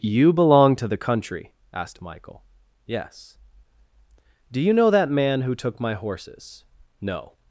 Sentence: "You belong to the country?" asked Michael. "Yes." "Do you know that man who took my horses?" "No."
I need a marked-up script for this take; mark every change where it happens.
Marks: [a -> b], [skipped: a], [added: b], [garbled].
"You belong to the country?" asked Michael. "Yes." "Do you know that man who took my horses?" "No."